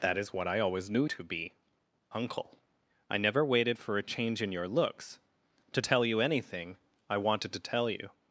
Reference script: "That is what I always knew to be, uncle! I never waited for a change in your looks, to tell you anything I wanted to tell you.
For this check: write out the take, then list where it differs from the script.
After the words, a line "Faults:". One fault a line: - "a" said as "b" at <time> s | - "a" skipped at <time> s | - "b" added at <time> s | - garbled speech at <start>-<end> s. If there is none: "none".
"That is what I always knew to be, uncle! I never waited for a change in your looks, to tell you anything I wanted to tell you.
Faults:
none